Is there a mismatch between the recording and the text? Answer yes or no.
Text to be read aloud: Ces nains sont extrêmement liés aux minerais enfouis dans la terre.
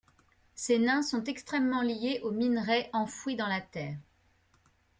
no